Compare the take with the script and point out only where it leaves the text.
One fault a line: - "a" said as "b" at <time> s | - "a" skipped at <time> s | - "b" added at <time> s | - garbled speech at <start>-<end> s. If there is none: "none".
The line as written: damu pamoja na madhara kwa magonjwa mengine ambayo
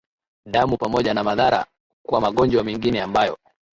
none